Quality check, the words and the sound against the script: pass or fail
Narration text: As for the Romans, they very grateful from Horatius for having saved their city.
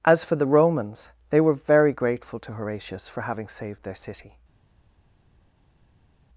fail